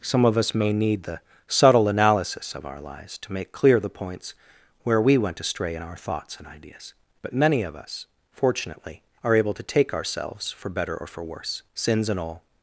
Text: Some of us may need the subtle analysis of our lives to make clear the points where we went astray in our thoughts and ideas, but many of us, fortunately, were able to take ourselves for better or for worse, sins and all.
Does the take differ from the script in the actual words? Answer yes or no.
yes